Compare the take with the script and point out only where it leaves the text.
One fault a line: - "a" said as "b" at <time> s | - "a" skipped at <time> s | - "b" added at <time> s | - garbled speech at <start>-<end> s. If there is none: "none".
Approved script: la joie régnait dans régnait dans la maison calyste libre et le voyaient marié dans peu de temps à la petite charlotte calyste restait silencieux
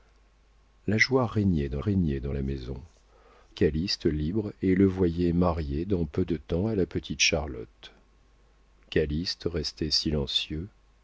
none